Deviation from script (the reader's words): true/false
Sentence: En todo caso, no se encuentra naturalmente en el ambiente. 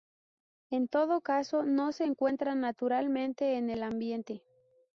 false